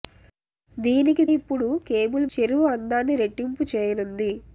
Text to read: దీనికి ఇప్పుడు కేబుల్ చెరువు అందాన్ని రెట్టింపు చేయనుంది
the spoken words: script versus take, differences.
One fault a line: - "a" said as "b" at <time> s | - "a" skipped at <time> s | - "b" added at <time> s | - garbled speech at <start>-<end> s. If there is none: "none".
none